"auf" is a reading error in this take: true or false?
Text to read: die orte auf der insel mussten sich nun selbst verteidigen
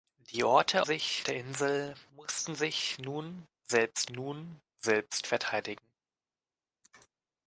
true